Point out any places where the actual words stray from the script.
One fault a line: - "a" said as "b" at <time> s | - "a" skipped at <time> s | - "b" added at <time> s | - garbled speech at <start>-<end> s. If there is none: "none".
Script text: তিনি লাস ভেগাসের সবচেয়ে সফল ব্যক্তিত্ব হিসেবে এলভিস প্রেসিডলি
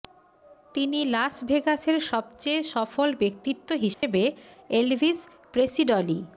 none